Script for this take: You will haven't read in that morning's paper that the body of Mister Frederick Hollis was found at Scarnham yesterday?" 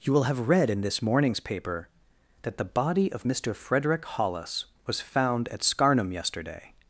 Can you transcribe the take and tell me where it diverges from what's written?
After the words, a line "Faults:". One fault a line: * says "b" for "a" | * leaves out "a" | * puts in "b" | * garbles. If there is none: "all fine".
You will have read in this morning's paper that the body of Mister Frederick Hollis was found at Scarnham yesterday?"
Faults:
* says "have" for "haven't"
* says "this" for "that"